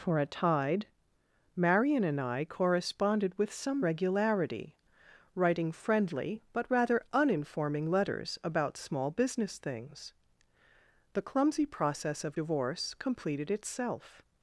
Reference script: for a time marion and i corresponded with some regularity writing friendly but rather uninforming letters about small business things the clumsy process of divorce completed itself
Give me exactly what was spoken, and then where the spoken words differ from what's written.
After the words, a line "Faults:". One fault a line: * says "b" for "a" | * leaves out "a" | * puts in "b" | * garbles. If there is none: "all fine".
for a tide marion and i corresponded with some regularity writing friendly but rather uninforming letters about small business things the clumsy process of divorce completed itself
Faults:
* says "tide" for "time"